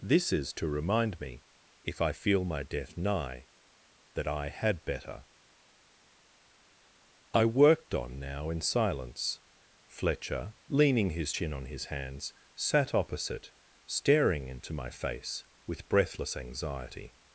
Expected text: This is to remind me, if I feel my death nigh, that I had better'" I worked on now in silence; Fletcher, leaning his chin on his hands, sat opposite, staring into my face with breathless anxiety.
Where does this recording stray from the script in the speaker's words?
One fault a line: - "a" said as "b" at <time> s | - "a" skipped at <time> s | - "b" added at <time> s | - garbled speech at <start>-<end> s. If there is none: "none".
none